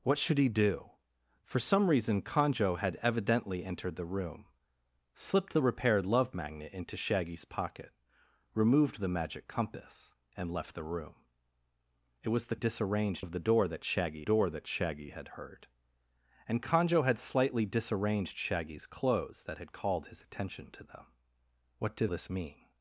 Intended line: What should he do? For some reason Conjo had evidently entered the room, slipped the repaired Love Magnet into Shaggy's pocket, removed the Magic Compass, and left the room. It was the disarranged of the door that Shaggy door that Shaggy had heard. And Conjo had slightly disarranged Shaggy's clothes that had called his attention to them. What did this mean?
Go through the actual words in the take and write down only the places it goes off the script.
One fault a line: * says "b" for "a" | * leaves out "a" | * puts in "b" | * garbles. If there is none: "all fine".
all fine